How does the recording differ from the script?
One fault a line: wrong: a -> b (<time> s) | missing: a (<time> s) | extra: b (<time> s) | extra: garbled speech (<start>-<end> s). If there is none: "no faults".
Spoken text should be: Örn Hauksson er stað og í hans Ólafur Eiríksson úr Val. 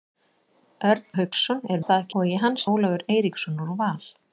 no faults